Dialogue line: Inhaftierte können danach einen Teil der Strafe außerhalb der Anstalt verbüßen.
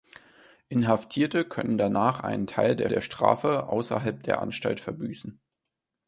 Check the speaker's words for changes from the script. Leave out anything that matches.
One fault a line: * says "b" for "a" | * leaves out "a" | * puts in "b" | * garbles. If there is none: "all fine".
* puts in "der"